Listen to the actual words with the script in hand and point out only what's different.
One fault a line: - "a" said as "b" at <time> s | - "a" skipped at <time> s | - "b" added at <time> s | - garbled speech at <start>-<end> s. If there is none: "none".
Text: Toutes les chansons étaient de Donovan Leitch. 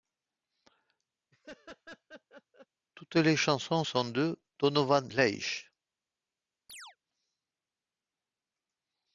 - "étaient" said as "sont" at 3.8 s